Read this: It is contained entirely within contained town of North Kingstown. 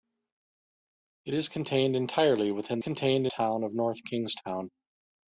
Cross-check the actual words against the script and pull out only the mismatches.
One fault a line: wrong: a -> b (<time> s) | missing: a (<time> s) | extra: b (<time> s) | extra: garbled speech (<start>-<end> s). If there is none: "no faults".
no faults